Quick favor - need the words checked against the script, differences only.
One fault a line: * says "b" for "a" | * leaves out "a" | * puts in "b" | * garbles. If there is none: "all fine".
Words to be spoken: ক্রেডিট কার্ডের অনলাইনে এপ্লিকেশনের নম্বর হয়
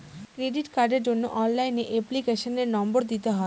* puts in "জন্য"
* puts in "দিতে"